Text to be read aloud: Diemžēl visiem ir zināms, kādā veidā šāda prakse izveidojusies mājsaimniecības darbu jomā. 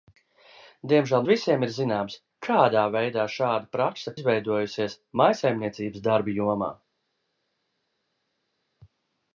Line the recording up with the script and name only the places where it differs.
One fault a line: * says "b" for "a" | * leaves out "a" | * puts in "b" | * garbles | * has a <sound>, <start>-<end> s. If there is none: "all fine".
all fine